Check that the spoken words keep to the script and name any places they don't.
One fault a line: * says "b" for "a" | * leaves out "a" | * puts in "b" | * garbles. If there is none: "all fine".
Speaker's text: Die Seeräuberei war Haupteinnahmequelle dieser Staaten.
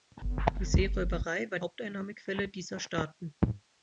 all fine